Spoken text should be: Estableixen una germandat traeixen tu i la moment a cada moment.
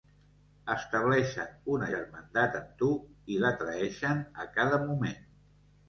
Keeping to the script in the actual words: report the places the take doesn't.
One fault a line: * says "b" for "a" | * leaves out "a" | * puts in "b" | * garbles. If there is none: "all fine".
* says "amb" for "traeixen"
* says "traeixen" for "moment"